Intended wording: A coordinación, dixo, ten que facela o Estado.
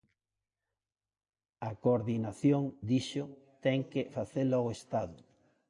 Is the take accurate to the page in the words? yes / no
yes